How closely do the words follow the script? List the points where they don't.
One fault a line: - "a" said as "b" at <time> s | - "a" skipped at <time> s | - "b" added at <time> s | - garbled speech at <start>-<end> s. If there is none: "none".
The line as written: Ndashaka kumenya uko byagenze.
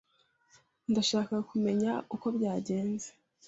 none